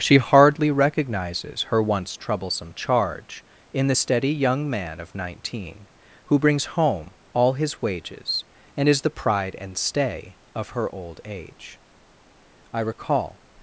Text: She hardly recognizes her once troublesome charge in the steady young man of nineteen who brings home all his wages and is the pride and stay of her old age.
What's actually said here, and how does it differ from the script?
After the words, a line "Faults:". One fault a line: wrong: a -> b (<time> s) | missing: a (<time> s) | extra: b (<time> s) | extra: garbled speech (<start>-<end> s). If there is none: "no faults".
She hardly recognizes her once troublesome charge in the steady young man of nineteen who brings home all his wages and is the pride and stay of her old age. I recall
Faults:
extra: I recall (12.7 s)